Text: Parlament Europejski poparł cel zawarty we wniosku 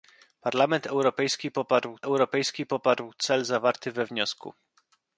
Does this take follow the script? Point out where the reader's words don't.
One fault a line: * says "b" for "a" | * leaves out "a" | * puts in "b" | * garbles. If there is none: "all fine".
* puts in "Europejski poparł"